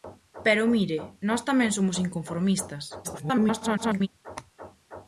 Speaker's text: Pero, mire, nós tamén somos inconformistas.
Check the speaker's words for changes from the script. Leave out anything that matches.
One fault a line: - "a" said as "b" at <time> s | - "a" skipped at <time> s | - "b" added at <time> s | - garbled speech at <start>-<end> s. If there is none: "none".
- garbled speech at 3.0-4.1 s